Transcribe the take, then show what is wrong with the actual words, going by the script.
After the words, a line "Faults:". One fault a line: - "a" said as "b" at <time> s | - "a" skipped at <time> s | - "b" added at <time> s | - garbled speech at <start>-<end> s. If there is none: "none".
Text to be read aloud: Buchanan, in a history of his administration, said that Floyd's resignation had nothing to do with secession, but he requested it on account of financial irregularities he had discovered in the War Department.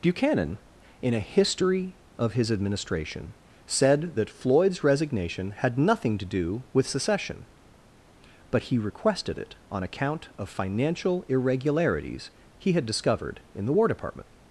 Buchanan, in a history of his administration, said that Floyd's resignation had nothing to do with secession, but he requested it on account of financial irregularities he had discovered in the War Department.
Faults:
none